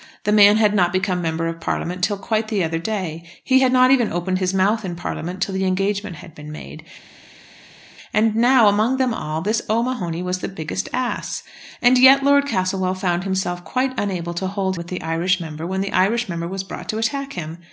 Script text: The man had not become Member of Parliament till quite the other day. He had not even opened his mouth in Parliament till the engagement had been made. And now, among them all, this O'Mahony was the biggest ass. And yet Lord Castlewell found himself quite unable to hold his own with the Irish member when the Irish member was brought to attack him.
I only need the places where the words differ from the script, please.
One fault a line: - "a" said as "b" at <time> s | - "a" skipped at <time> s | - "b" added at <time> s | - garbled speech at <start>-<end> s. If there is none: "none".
- "his own" skipped at 14.8 s